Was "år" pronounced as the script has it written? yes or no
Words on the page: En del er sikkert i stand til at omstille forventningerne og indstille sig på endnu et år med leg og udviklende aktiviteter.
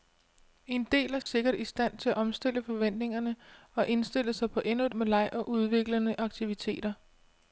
no